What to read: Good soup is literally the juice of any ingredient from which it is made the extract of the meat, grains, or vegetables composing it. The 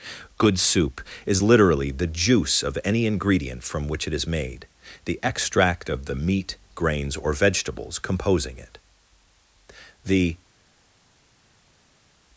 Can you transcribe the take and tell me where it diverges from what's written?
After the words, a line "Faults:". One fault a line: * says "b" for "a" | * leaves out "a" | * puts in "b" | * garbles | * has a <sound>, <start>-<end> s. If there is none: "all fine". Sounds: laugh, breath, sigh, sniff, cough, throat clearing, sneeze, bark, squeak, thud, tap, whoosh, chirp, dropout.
Good soup is literally the juice of any ingredient from which it is made the extract of the meat, grains, or vegetables composing it. The
Faults:
all fine